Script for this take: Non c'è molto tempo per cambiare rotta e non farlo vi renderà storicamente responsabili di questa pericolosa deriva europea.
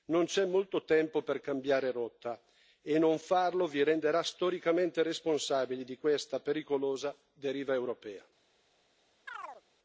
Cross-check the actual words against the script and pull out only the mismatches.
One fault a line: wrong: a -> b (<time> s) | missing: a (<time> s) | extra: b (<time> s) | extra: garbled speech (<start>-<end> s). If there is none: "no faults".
no faults